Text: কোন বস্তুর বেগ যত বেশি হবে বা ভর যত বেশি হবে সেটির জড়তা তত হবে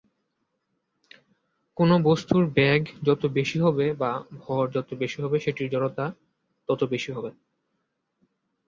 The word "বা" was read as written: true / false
true